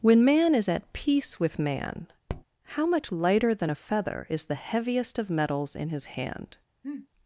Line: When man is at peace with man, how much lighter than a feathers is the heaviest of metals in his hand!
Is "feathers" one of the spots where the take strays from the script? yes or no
yes